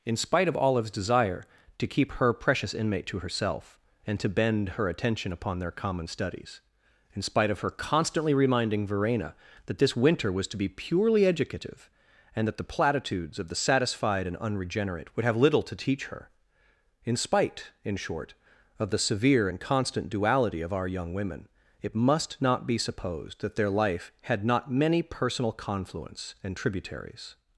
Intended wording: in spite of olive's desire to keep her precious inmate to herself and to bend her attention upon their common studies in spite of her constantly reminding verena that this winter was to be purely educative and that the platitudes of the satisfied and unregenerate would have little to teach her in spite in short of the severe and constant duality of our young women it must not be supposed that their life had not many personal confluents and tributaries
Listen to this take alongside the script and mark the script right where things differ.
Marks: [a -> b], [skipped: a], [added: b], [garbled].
in spite of olive's desire to keep her precious inmate to herself and to bend her attention upon their common studies in spite of her constantly reminding verena that this winter was to be purely educative and that the platitudes of the satisfied and unregenerate would have little to teach her in spite in short of the severe and constant duality of our young women it must not be supposed that their life had not many personal confluents and tributaries